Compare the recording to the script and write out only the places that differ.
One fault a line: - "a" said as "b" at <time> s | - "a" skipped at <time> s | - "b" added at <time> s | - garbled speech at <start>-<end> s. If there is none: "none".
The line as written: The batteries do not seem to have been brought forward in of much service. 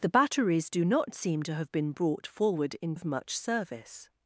none